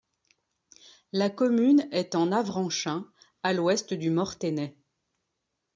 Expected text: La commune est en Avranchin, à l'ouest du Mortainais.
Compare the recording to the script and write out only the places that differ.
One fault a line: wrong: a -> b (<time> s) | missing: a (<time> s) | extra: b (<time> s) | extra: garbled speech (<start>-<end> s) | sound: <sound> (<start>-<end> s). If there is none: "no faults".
no faults